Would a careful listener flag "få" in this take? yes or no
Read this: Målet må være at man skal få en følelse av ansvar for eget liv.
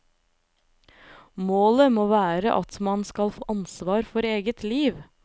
yes